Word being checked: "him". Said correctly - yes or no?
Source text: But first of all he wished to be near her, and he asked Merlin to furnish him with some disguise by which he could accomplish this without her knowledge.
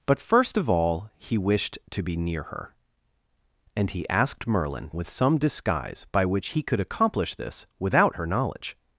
no